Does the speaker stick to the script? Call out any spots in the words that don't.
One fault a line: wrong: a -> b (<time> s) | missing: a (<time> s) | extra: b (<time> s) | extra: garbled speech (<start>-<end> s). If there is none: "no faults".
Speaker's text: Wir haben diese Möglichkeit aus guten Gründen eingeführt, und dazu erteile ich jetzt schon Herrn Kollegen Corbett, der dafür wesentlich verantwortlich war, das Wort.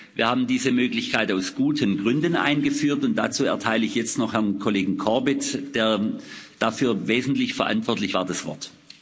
wrong: schon -> noch (4.2 s)